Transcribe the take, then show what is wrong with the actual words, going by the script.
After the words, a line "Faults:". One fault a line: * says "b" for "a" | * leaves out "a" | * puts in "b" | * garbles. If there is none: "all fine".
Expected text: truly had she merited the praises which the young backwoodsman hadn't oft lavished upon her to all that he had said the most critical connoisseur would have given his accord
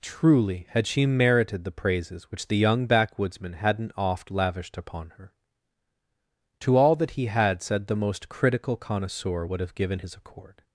truly had she merited the praises which the young backwoodsman hadn't oft lavished upon her to all that he had said the most critical connoisseur would have given his accord
Faults:
all fine